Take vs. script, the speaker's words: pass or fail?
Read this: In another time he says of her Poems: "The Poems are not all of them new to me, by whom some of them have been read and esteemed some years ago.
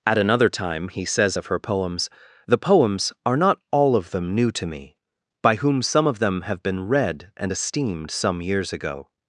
fail